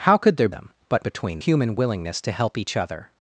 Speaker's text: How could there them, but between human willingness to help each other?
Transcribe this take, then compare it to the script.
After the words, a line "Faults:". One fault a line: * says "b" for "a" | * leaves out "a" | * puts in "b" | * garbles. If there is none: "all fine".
How could there them, but between human willingness to help each other?
Faults:
all fine